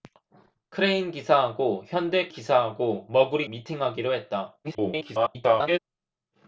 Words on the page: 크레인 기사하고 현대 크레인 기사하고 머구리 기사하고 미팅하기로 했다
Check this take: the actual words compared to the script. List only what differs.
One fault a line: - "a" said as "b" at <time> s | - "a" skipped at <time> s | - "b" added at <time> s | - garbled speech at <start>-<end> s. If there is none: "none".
- "크레인" skipped at 2.3 s
- "기사하고" skipped at 3.5 s
- garbled speech at 4.6-5.8 s